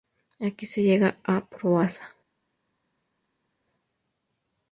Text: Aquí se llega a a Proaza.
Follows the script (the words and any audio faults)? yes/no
no